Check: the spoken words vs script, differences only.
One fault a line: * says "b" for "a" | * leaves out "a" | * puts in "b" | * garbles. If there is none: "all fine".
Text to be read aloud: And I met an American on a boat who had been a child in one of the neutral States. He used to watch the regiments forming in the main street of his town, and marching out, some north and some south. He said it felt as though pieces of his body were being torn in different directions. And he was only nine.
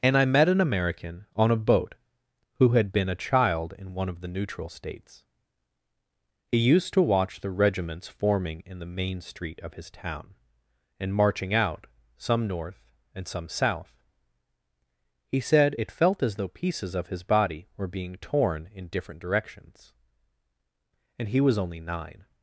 all fine